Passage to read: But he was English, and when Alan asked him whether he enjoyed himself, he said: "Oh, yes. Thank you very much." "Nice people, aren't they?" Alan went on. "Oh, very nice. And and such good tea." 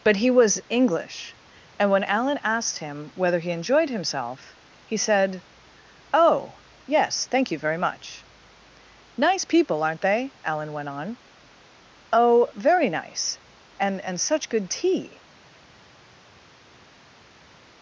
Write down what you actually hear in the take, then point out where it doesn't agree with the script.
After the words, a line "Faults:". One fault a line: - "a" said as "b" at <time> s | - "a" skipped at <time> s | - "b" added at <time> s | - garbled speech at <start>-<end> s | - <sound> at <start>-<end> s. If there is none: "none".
But he was English, and when Alan asked him whether he enjoyed himself, he said: "Oh, yes. Thank you very much." "Nice people, aren't they?" Alan went on. "Oh, very nice. And and such good tea."
Faults:
none